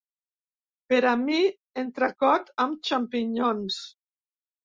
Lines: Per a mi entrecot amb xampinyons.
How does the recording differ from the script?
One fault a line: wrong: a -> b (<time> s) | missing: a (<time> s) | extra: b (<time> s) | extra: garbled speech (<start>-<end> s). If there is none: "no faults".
no faults